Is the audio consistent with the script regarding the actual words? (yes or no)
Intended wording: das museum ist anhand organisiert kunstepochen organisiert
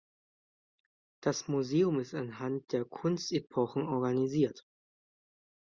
no